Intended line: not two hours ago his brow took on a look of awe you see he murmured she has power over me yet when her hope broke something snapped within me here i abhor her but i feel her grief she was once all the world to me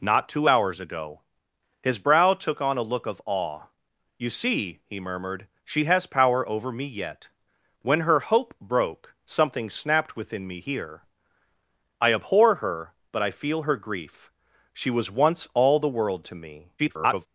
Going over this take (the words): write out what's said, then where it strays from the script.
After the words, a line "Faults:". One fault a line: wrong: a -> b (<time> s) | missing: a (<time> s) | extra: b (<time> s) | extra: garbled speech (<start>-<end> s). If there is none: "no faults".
not two hours ago his brow took on a look of awe you see he murmured she has power over me yet when her hope broke something snapped within me here i abhor her but i feel her grief she was once all the world to me [garbled]
Faults:
extra: garbled speech (16.8-17.3 s)